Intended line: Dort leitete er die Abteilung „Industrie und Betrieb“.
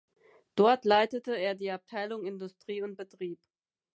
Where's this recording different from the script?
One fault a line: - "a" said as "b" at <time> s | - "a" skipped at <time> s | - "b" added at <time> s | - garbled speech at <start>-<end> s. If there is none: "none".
none